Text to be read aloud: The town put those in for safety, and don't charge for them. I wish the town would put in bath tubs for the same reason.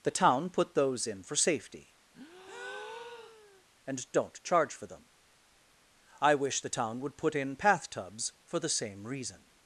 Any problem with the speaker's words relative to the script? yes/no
yes